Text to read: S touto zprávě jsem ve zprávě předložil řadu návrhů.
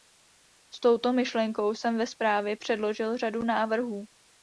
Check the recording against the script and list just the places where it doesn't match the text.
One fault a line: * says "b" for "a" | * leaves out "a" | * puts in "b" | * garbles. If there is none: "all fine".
* says "myšlenkou" for "zprávě"